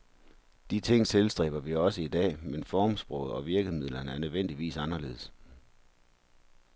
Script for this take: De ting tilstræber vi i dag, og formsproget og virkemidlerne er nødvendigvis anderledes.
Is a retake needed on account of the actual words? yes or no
yes